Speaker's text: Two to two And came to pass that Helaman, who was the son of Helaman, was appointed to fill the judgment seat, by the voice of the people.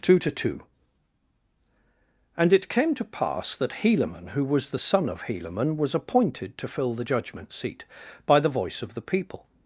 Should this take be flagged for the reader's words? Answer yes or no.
yes